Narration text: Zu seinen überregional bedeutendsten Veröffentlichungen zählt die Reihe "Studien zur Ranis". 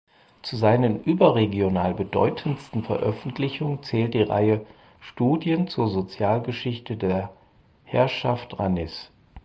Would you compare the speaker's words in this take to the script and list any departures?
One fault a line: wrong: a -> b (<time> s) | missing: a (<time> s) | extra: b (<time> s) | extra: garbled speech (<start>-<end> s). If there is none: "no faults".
extra: Sozialgeschichte der Herrschaft (5.9 s)